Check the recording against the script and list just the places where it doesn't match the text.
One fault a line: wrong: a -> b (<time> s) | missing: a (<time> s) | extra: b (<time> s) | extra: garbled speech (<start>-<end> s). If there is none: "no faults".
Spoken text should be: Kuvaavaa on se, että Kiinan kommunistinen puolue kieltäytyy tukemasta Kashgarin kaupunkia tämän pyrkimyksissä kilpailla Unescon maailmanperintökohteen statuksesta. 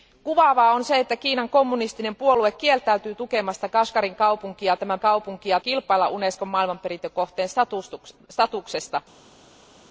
wrong: pyrkimyksissä -> kaupunkia (5.0 s)